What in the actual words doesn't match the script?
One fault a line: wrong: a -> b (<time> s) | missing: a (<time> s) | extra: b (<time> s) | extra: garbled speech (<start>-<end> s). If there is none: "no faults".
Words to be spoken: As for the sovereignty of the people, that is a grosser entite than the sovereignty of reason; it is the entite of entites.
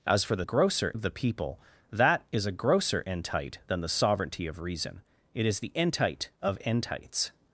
wrong: sovereignty -> grosser (0.4 s)